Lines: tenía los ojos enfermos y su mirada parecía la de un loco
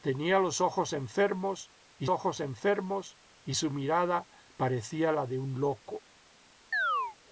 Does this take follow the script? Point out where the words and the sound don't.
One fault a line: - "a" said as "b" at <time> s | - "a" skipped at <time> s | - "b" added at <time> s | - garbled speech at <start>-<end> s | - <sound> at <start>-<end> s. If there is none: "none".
- "ojos enfermos y" added at 2.1 s
- chirp at 6.7-7.2 s